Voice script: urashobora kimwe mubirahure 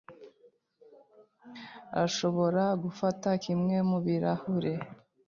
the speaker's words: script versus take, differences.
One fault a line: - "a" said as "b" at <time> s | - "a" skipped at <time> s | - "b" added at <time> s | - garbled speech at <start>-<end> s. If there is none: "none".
- "gufata" added at 2.8 s